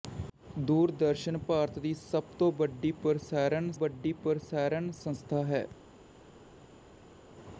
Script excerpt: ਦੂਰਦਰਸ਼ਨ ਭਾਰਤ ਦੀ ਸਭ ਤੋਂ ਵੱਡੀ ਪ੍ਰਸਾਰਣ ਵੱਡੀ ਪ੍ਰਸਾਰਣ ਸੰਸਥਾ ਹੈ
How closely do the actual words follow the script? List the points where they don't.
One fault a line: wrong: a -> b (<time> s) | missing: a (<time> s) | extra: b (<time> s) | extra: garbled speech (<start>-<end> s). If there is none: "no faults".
no faults